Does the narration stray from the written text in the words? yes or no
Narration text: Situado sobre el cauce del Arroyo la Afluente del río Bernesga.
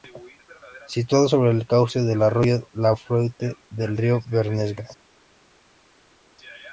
no